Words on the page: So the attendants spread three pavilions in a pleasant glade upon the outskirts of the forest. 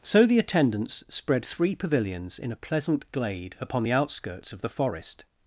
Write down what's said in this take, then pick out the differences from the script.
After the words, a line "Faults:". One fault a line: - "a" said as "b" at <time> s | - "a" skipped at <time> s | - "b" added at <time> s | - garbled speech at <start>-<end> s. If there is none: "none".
So the attendants spread three pavilions in a pleasant glade upon the outskirts of the forest.
Faults:
none